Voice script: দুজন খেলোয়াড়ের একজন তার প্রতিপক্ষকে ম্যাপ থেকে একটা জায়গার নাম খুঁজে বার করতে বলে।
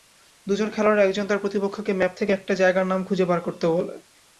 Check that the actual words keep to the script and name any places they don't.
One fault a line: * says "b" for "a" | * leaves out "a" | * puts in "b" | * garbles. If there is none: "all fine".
all fine